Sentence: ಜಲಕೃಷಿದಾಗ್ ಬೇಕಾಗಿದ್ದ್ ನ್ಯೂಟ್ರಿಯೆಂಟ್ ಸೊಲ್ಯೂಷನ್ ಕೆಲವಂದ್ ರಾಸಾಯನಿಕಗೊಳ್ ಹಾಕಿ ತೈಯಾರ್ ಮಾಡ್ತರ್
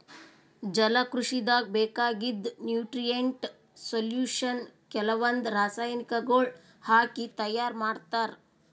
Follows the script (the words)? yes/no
yes